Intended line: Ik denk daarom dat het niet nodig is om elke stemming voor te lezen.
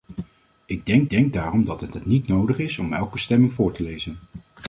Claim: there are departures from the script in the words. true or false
true